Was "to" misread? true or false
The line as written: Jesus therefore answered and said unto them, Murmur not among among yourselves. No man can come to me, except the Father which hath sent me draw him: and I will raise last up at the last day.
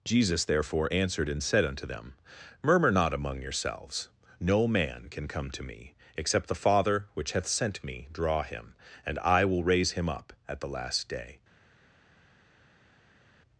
false